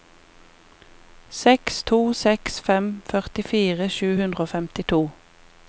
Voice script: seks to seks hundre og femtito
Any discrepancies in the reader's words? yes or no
yes